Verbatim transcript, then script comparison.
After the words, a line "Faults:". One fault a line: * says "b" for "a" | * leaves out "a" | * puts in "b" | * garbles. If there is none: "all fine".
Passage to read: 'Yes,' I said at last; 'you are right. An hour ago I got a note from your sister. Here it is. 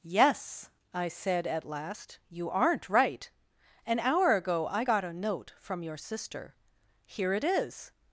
'Yes,' I said at last; 'you aren't right. An hour ago I got a note from your sister. Here it is.
Faults:
* says "aren't" for "are"